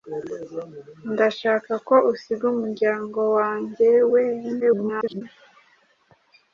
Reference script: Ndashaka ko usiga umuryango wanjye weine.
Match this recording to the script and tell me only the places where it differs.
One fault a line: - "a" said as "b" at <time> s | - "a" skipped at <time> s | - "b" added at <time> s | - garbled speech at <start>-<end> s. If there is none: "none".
- garbled speech at 4.6-5.2 s